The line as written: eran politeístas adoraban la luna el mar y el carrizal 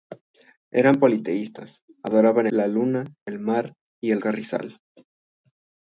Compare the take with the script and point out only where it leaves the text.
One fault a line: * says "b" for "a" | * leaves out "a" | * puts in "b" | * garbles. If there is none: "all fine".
all fine